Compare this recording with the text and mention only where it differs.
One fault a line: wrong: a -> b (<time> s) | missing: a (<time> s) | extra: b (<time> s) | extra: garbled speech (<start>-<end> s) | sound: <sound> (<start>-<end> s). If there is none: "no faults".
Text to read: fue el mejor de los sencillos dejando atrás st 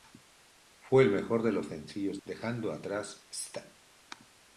no faults